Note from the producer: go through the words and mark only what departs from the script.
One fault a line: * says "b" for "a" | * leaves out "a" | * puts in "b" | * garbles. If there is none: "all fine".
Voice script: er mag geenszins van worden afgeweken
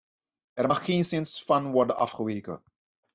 all fine